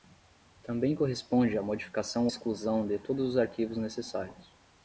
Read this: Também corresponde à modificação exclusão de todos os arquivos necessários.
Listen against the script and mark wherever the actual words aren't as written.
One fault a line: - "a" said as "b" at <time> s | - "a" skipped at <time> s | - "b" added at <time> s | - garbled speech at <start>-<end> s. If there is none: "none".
none